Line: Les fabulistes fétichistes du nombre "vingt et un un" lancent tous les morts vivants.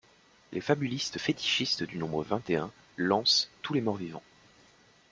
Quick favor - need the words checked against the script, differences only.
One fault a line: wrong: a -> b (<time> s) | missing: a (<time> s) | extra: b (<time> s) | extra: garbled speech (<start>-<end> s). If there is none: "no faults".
missing: un (2.7 s)